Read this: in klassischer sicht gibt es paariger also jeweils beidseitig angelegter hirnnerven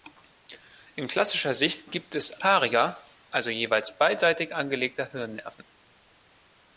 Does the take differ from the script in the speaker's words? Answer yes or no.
no